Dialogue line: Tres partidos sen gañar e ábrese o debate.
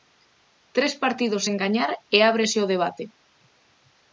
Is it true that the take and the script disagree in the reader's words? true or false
false